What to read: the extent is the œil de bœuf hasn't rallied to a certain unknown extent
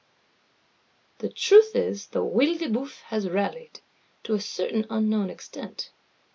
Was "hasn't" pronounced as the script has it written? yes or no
no